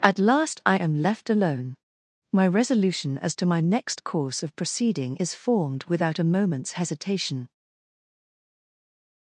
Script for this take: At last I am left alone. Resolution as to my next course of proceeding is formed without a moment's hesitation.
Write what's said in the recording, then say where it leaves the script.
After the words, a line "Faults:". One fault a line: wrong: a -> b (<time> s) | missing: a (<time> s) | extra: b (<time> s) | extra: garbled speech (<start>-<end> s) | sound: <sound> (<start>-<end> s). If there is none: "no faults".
At last I am left alone. My resolution as to my next course of proceeding is formed without a moment's hesitation.
Faults:
extra: My (2.3 s)